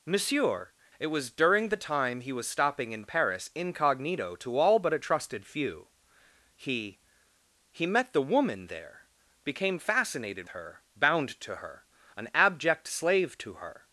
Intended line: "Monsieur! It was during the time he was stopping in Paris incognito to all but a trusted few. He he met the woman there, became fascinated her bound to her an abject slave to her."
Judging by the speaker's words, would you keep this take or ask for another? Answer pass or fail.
pass